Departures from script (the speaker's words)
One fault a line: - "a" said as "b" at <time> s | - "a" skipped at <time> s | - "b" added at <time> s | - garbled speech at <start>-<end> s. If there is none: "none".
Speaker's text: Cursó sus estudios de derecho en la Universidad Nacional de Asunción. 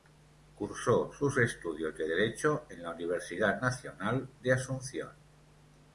none